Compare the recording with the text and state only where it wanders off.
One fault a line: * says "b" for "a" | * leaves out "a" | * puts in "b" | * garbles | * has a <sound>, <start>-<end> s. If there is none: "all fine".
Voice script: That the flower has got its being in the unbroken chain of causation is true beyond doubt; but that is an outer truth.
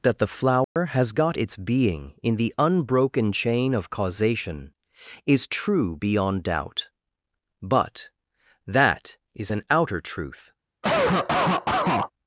* has a dropout, 0.6-0.8 s
* has a cough, 10.8-12.1 s